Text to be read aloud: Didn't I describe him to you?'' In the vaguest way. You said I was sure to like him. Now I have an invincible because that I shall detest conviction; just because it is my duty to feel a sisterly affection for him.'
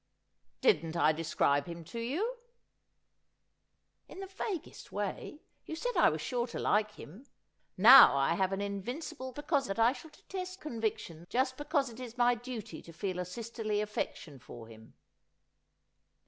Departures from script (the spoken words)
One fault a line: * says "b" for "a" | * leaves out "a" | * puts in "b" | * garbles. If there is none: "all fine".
all fine